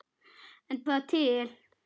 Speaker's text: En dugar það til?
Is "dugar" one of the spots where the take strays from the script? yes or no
yes